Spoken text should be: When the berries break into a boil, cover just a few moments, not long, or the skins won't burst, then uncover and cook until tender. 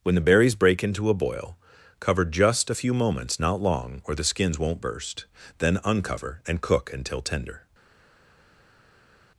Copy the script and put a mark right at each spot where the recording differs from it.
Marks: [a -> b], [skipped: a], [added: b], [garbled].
When the berries break into a boil, cover just a few moments, not long, or the skins won't burst, then uncover and cook until tender.